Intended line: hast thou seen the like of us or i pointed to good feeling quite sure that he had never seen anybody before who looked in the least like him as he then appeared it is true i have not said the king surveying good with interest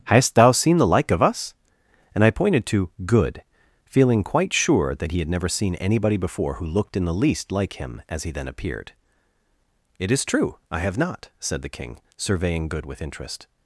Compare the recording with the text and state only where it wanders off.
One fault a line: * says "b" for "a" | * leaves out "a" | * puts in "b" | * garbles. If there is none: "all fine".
* says "and" for "or"